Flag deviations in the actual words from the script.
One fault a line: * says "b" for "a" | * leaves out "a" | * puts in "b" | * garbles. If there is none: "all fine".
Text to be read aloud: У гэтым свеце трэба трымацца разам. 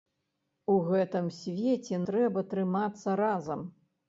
all fine